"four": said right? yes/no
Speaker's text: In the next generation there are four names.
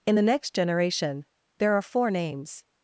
yes